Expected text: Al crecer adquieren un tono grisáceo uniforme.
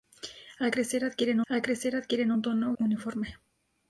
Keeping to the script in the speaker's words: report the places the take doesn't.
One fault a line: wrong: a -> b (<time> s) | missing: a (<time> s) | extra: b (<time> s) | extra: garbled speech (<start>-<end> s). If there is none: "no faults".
extra: al crecer adquieren (1.5 s)
missing: grisáceo (2.7 s)